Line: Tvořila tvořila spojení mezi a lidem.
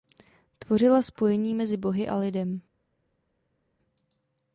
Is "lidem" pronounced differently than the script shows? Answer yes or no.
no